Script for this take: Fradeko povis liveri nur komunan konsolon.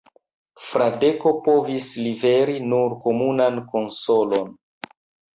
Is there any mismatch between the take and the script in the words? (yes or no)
no